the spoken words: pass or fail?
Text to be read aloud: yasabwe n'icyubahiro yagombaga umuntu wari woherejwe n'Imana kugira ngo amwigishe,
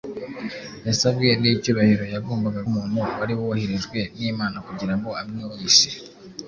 pass